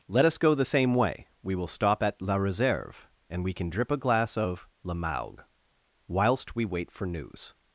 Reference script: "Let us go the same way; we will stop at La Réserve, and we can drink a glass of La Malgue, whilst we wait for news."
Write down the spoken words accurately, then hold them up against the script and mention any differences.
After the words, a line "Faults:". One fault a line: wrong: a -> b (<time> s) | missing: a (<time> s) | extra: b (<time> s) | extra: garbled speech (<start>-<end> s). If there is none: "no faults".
"Let us go the same way; we will stop at La Réserve, and we can drip a glass of La Malgue, whilst we wait for news."
Faults:
wrong: drink -> drip (3.7 s)